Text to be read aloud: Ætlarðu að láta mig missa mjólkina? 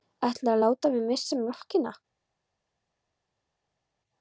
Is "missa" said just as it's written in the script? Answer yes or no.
yes